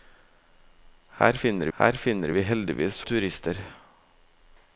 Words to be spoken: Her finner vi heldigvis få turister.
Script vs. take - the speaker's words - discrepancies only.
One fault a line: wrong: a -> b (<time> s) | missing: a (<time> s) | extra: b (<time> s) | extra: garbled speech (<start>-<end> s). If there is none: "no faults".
extra: her finner (1.8 s)
missing: få (3.0 s)